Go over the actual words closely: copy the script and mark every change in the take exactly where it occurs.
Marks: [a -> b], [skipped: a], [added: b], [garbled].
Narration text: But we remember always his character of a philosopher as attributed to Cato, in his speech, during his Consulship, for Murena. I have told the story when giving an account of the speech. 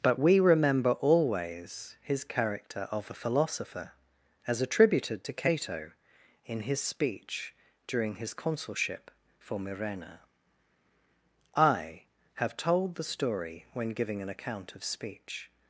But we remember always his character of a philosopher as attributed to Cato, in his speech, during his Consulship, for Murena. I have told the story when giving an account of [skipped: the] speech.